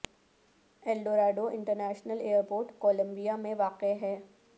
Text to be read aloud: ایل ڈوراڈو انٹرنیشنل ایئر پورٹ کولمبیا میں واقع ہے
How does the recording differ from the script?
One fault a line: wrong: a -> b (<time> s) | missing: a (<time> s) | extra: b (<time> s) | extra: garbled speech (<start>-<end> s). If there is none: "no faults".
no faults